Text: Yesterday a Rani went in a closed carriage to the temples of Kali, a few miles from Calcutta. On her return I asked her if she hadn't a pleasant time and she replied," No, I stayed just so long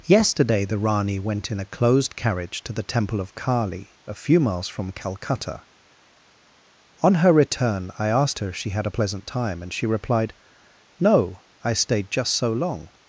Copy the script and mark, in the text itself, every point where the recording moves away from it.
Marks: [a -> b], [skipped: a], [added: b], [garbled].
Yesterday [a -> the] Rani went in a closed carriage to the [temples -> temple] of Kali, a few miles from Calcutta. On her return I asked her if she [hadn't -> had] a pleasant time and she replied," No, I stayed just so long